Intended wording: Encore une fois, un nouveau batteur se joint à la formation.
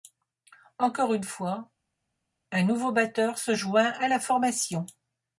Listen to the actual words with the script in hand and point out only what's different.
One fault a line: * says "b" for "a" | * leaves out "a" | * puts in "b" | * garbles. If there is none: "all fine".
all fine